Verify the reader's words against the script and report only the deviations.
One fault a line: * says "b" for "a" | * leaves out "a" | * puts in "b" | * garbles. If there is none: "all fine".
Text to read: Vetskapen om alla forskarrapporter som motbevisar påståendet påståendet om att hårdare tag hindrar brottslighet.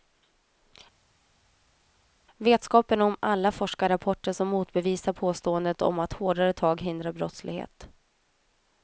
* leaves out "påståendet"